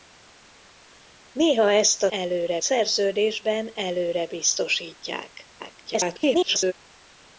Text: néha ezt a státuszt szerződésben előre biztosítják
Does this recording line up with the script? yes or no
no